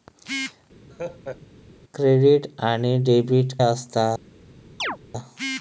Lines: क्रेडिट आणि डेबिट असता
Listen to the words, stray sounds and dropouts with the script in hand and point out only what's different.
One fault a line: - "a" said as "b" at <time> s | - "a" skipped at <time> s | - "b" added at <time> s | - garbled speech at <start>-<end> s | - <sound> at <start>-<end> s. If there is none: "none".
- laugh at 0.9-1.4 s
- chirp at 4.8-5.0 s